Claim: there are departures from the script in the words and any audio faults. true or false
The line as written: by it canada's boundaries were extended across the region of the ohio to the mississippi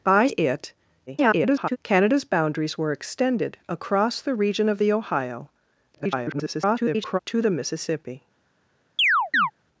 true